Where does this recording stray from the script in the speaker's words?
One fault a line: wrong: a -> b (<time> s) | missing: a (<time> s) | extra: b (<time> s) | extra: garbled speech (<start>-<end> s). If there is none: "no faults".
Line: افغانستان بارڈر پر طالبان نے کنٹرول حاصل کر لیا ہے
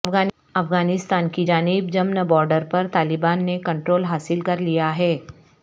extra: کی جانب جمن (1.3 s)